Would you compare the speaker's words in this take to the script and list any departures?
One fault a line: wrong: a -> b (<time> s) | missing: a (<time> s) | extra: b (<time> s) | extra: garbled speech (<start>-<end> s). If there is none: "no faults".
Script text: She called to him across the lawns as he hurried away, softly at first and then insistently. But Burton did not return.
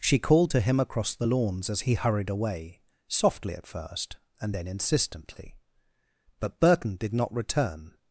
no faults